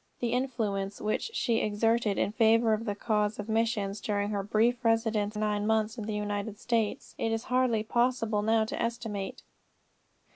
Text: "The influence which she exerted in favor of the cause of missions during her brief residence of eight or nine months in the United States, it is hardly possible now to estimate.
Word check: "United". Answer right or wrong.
right